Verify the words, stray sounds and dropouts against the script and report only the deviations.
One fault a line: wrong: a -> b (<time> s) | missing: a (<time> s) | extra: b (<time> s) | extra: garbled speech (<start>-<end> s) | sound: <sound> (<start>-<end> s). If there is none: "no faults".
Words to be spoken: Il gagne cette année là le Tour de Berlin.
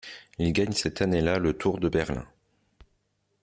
no faults